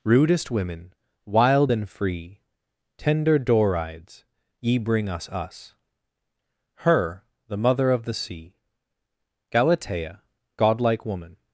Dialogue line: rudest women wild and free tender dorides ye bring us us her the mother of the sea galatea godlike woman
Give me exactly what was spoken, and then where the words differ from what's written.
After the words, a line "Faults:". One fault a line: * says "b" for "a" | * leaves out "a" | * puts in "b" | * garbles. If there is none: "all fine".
rudest women wild and free tender dorides ye bring us us her the mother of the sea galatea godlike woman
Faults:
all fine